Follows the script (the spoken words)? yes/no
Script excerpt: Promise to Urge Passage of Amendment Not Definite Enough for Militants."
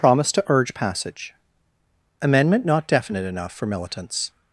no